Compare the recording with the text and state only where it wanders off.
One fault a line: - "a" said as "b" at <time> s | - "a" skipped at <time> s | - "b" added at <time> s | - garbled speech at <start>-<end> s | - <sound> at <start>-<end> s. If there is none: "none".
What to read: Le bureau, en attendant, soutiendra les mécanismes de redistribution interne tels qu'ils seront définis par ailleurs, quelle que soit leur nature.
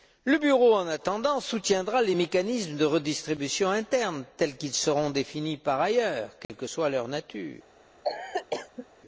- dropout at 6.4-6.5 s
- cough at 8.0-8.9 s